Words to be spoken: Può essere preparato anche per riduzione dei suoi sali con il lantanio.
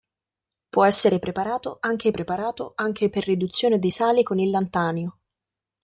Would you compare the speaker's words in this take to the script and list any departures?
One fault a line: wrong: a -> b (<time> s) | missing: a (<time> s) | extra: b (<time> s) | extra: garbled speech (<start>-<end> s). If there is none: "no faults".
extra: preparato anche (2.1 s)
missing: suoi (3.9 s)